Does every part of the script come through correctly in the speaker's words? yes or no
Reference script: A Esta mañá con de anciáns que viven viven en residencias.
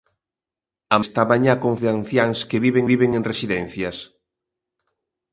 yes